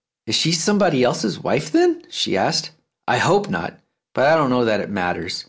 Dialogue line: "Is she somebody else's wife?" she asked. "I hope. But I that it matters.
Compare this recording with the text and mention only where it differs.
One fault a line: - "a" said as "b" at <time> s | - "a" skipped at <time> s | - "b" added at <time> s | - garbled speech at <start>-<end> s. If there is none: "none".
- "then" added at 1.7 s
- "not" added at 3.5 s
- "don't know" added at 4.4 s